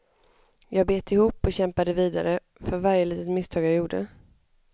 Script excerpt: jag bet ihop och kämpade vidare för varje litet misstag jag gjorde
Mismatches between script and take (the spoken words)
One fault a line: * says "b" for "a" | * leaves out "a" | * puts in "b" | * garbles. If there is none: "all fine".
all fine